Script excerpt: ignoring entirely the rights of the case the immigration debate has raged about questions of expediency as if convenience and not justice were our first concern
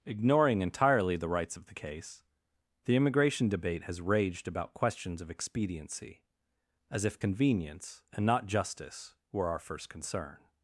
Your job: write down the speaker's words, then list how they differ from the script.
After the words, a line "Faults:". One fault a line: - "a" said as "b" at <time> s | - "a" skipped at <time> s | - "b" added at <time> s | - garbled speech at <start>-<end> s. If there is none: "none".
ignoring entirely the rights of the case the immigration debate has raged about questions of expediency as if convenience and not justice were our first concern
Faults:
none